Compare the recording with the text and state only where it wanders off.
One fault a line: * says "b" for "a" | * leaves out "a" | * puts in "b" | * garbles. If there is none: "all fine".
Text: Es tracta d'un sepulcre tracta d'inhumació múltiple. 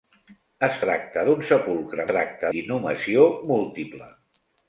all fine